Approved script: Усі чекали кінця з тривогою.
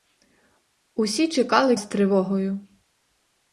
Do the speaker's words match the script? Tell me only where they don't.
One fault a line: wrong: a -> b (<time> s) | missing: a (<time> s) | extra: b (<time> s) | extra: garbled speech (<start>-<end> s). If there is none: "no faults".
missing: кінця (1.8 s)